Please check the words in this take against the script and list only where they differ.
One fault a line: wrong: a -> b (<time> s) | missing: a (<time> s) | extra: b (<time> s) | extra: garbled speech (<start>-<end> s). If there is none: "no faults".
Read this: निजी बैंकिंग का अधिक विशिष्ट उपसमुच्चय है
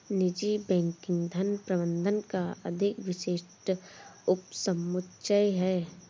extra: धन प्रबंधन (1.3 s)